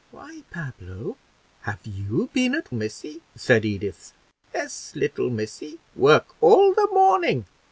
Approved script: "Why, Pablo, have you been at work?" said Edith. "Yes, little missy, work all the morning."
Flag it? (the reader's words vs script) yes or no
yes